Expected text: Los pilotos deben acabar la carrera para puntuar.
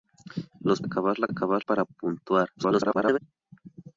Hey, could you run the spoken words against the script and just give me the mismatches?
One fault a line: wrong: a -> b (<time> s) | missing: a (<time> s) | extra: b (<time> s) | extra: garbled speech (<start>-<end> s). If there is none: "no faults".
missing: pilotos deben (0.8 s)
wrong: carrera -> acabar (1.3 s)
extra: garbled speech (2.6-3.2 s)